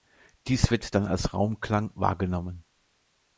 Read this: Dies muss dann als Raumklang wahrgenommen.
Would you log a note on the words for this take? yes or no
yes